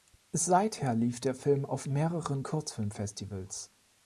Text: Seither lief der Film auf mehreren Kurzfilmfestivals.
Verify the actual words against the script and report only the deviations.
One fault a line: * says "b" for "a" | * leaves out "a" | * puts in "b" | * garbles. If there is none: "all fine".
all fine